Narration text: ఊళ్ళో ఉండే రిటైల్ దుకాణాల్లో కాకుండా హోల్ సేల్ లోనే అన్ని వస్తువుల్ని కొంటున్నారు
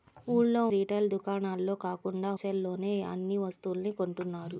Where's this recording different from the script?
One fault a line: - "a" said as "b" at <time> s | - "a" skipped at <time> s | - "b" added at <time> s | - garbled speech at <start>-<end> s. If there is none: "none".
- "ఉండే" skipped at 0.6 s
- "హోల్" skipped at 2.3 s